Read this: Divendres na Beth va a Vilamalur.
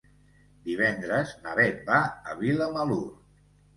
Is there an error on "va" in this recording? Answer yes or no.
no